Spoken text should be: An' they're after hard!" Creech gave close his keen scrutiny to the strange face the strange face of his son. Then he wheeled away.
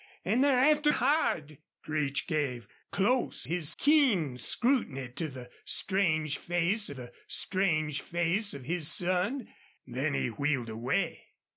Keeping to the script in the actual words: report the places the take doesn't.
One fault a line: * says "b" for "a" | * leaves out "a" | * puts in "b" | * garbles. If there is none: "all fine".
all fine